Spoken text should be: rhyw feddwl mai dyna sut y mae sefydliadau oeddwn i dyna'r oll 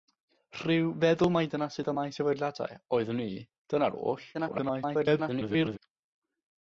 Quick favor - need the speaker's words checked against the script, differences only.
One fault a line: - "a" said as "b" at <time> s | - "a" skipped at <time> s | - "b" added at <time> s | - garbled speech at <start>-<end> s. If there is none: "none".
- garbled speech at 4.3-5.8 s